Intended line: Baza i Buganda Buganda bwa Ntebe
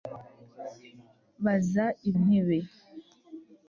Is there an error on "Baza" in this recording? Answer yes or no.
no